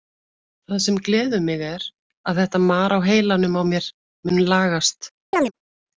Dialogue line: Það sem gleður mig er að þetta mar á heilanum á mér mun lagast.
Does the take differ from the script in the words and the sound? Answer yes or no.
yes